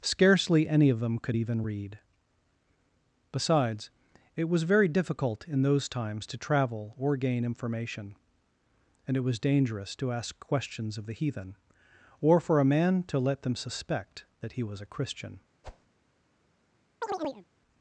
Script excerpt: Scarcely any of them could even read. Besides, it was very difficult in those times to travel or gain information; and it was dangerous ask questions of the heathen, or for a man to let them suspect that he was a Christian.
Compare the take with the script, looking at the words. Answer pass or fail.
fail